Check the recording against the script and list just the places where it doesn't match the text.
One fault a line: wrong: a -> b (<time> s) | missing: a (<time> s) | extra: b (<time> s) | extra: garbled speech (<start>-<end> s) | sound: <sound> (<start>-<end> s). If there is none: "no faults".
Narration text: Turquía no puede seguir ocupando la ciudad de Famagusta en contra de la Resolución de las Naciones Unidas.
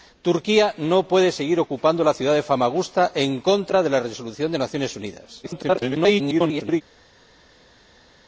extra: garbled speech (5.4-6.8 s)